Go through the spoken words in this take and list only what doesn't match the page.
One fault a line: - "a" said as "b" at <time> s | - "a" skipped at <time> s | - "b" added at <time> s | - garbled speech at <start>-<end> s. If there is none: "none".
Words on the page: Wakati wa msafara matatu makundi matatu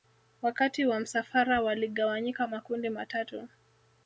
- "matatu" said as "waligawanyika" at 1.6 s